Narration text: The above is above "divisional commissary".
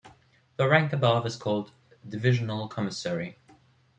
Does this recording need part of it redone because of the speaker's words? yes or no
yes